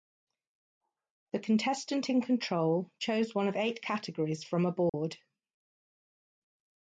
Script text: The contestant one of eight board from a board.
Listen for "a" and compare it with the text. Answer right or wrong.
right